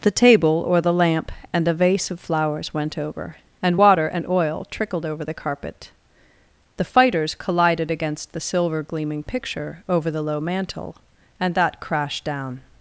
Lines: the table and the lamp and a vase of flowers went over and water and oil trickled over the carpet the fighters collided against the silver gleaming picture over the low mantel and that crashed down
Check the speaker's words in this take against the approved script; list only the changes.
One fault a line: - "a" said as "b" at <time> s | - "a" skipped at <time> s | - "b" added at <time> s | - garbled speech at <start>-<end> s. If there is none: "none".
- "and" said as "or" at 0.7 s